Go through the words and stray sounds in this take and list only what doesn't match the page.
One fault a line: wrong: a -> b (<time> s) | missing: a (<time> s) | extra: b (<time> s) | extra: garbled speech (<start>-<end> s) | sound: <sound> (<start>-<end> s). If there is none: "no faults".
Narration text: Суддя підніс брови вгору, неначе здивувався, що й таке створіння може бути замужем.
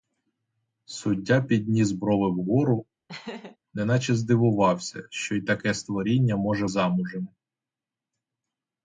sound: laugh (3.1-3.6 s)
missing: бути (6.7 s)